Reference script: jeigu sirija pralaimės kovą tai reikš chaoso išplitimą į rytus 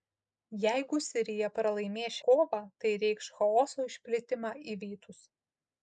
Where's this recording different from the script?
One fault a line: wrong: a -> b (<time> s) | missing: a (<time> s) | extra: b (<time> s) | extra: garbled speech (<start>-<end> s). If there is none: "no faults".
no faults